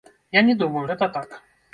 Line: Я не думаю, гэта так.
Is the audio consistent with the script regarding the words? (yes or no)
yes